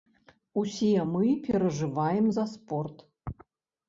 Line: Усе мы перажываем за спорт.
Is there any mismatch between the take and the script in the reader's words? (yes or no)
no